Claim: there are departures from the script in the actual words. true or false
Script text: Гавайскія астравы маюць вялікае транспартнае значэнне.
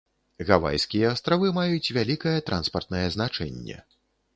false